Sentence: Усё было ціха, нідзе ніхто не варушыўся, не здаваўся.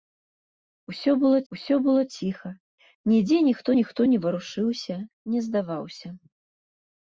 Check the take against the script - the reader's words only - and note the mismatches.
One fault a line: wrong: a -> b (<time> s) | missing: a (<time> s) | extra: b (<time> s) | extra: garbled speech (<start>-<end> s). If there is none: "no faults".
extra: усё было (1.5 s)
extra: ніхто (3.8 s)